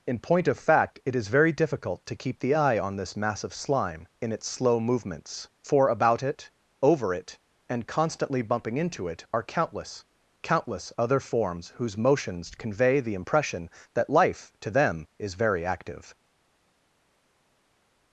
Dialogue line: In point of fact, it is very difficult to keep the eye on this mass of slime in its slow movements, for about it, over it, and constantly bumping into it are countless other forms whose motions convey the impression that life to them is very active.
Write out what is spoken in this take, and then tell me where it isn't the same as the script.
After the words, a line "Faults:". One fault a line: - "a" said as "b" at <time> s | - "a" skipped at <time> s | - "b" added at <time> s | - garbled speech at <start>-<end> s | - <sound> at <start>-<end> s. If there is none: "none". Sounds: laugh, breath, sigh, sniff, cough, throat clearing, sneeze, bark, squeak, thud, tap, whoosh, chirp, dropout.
In point of fact, it is very difficult to keep the eye on this mass of slime in its slow movements, for about it, over it, and constantly bumping into it are countless countless other forms whose motions convey the impression that life to them is very active.
Faults:
- "countless" added at 10.4 s